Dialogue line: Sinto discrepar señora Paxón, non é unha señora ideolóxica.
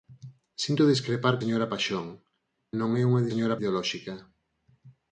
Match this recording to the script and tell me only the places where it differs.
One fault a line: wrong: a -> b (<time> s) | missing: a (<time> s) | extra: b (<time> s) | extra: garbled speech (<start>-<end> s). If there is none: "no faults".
no faults